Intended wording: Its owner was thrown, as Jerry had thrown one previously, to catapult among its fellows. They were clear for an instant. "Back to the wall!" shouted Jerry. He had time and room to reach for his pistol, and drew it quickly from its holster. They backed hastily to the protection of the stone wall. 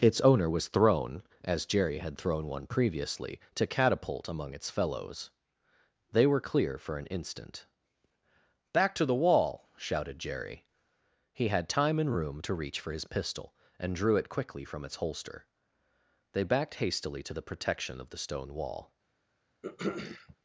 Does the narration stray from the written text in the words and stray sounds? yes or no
yes